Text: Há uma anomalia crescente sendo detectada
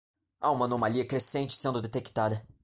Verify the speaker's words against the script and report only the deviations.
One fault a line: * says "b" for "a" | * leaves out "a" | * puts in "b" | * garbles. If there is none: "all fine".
all fine